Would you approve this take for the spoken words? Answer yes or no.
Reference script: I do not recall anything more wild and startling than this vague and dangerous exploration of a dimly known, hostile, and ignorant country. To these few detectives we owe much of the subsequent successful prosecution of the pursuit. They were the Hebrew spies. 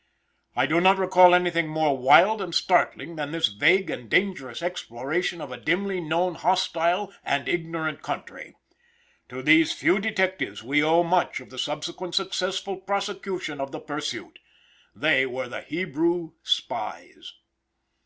yes